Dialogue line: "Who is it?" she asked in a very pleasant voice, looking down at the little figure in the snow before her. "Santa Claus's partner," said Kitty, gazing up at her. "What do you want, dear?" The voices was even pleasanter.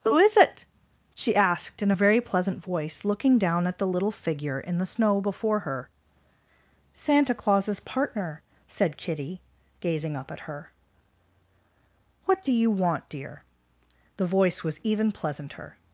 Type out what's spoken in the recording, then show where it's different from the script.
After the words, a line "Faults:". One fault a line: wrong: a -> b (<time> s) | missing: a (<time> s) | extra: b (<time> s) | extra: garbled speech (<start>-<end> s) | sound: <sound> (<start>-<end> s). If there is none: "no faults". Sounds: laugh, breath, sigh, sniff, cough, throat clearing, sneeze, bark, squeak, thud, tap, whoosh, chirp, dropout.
"Who is it?" she asked in a very pleasant voice, looking down at the little figure in the snow before her. "Santa Claus's partner," said Kitty, gazing up at her. "What do you want, dear?" The voice was even pleasanter.
Faults:
wrong: voices -> voice (14.3 s)